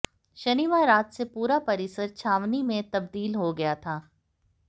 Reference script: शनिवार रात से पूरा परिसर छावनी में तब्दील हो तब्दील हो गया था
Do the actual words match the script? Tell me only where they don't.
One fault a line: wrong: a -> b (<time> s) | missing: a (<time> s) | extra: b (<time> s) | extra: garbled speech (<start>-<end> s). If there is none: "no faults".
missing: तब्दील हो (3.5 s)